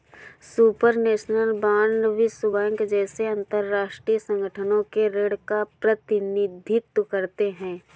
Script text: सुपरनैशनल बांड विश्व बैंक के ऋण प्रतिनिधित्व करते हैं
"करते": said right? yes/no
yes